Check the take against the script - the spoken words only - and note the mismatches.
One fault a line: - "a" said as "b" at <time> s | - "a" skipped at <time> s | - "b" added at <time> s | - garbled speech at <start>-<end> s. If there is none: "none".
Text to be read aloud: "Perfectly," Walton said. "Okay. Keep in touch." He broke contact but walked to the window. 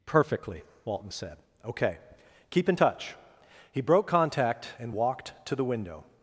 - "but" said as "and" at 4.8 s